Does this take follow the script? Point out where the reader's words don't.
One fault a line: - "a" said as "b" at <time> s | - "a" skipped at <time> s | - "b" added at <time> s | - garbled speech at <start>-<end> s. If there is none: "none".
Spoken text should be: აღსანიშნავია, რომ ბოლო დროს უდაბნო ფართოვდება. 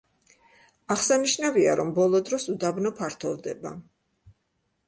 none